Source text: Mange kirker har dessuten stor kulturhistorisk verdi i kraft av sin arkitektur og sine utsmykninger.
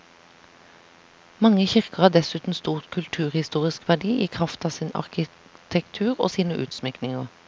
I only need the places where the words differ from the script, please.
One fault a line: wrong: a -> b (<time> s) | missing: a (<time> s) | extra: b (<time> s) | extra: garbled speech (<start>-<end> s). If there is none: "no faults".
no faults